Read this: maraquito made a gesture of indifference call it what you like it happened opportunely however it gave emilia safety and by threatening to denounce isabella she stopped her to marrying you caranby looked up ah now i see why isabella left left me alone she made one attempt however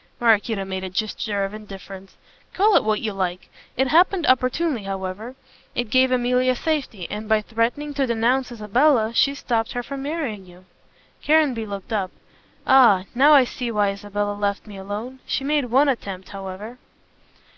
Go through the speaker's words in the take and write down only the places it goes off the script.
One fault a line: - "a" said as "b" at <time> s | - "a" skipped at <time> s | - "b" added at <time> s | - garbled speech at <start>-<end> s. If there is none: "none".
- "to" said as "from" at 9.8 s
- "left" skipped at 14.7 s